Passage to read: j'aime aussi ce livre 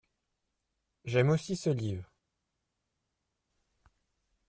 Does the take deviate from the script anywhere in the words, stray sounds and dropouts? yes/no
no